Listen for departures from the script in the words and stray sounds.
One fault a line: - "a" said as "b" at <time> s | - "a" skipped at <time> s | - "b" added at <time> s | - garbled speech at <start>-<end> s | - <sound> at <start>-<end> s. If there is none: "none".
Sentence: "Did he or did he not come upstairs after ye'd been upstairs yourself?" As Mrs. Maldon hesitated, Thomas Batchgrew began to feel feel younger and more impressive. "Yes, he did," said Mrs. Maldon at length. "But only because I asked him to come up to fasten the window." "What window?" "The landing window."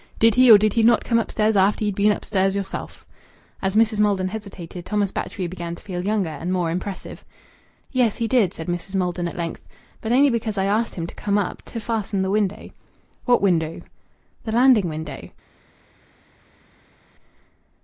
- "feel" skipped at 6.0 s